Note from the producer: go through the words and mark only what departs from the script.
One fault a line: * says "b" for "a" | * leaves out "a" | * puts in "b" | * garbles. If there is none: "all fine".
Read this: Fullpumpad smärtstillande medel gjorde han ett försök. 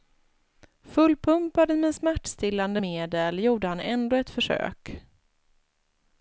* puts in "med"
* puts in "ändå"